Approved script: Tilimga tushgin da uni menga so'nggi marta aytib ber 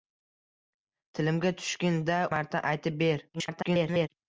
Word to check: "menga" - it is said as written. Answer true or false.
false